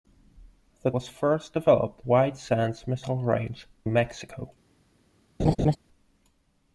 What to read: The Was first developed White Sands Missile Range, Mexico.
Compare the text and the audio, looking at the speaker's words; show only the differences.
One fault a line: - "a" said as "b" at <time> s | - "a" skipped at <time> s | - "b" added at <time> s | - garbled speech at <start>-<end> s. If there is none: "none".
none